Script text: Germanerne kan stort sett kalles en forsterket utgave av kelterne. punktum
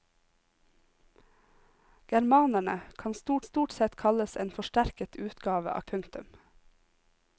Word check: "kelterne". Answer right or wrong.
wrong